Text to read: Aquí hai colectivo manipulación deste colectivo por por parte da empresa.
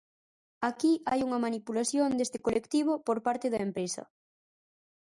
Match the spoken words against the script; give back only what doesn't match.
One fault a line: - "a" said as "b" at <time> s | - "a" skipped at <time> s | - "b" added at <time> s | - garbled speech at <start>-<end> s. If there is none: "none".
- "colectivo" said as "unha" at 1.3 s
- "por" skipped at 3.2 s